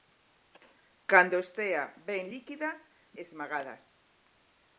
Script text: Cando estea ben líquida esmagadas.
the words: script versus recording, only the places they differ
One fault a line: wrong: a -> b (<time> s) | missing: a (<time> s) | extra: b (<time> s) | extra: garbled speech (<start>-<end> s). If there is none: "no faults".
no faults